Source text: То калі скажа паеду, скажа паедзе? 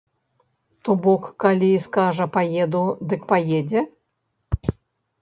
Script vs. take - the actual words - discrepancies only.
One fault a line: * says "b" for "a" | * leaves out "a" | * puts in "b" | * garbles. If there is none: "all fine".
* puts in "бок"
* says "дык" for "скажа"